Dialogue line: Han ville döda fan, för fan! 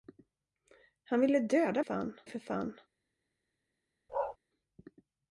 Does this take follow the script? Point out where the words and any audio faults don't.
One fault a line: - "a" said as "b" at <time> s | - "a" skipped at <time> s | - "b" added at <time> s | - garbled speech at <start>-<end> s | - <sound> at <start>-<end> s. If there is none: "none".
- bark at 4.1-4.4 s